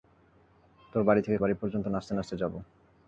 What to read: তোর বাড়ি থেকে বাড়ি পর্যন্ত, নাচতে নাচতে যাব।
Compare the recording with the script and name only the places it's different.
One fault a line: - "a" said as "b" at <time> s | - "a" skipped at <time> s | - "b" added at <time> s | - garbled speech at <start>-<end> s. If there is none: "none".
none